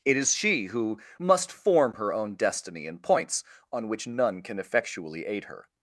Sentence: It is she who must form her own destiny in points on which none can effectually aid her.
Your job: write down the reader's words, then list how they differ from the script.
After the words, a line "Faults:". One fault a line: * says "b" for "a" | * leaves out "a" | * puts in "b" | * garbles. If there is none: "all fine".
It is she who must form her own destiny in points on which none can effectually aid her.
Faults:
all fine